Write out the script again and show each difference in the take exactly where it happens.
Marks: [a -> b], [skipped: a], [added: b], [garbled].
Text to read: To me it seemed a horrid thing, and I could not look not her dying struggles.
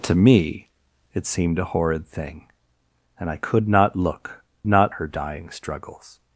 To me it seemed a horrid thing, and I could not look not her dying struggles.